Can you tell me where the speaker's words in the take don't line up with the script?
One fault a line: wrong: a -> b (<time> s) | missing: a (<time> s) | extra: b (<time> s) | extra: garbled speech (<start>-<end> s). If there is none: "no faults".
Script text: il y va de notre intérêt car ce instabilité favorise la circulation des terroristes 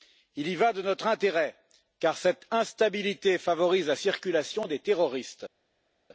wrong: ce -> cette (2.2 s)